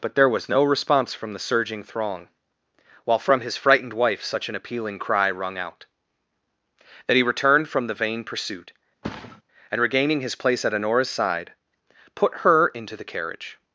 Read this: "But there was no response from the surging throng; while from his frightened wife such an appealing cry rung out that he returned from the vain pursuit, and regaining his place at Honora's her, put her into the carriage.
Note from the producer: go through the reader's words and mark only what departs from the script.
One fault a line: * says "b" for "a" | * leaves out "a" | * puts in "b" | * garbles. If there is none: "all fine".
* says "side" for "her"